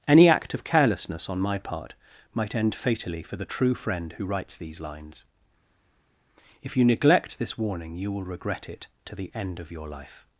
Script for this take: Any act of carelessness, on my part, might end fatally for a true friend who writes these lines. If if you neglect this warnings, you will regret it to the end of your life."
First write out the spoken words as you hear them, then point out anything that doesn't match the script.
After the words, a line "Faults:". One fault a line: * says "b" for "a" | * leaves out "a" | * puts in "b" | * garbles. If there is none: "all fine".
Any act of carelessness, on my part, might end fatally for the true friend who writes these lines. If you neglect this warning, you will regret it to the end of your life."
Faults:
* says "the" for "a"
* leaves out "if"
* says "warning" for "warnings"